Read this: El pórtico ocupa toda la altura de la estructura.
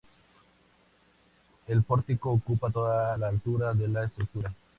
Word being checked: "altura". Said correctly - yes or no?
yes